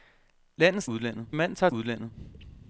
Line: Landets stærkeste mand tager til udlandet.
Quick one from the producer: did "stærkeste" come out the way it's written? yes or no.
no